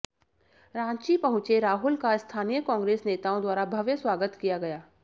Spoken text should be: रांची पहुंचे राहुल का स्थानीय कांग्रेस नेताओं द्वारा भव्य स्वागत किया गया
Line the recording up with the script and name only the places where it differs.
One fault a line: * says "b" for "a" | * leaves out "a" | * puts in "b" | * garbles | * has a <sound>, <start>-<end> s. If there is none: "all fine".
all fine